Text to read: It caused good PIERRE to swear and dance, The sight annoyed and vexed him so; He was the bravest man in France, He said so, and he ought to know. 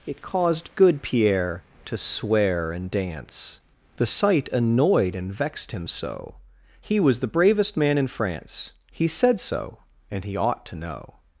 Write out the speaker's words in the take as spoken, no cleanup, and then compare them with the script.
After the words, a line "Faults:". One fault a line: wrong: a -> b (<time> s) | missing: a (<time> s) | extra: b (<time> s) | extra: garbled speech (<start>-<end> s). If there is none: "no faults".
It caused good PIERRE to swear and dance, The sight annoyed and vexed him so; He was the bravest man in France, He said so, and he ought to know.
Faults:
no faults